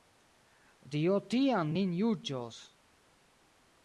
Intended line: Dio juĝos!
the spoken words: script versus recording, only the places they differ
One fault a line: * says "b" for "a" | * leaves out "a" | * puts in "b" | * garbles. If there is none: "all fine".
* puts in "tiam nin"